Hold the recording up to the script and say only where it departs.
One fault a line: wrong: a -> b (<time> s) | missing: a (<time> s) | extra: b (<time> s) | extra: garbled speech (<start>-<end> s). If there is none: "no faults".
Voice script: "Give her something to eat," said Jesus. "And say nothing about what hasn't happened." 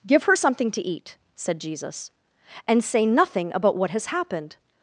wrong: hasn't -> has (3.9 s)